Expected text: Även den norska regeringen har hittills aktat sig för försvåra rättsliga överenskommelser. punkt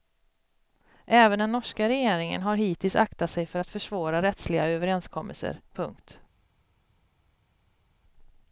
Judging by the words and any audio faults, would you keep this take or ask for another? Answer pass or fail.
fail